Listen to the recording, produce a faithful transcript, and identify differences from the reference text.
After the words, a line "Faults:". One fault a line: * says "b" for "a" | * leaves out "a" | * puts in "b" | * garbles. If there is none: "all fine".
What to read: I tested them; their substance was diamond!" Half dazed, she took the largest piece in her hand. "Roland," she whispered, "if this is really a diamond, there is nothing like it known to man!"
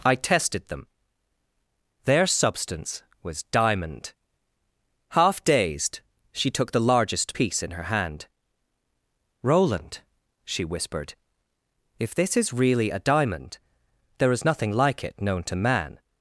I tested them; their substance was diamond!" Half dazed, she took the largest piece in her hand. "Roland," she whispered, "if this is really a diamond, there is nothing like it known to man!"
Faults:
all fine